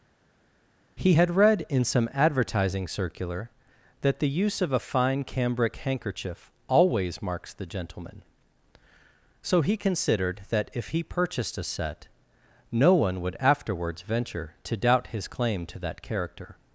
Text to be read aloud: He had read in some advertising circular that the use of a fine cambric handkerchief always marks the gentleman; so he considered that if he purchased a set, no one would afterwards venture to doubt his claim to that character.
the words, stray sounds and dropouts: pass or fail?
pass